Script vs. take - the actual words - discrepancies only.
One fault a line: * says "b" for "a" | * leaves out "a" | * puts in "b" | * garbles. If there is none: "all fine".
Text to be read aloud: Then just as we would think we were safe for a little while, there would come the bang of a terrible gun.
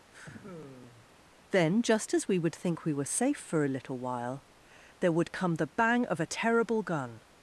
all fine